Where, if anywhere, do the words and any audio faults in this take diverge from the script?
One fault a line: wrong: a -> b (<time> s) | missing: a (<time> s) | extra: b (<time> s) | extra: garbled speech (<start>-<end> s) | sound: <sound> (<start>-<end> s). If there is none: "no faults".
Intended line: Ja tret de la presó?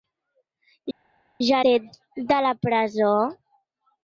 no faults